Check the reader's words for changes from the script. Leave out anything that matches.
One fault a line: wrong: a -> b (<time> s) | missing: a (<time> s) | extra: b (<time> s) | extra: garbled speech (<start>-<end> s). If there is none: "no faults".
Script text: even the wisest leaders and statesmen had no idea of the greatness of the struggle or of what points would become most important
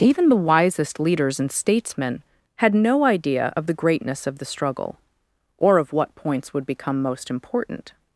no faults